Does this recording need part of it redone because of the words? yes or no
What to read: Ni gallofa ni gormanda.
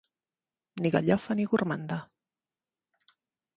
no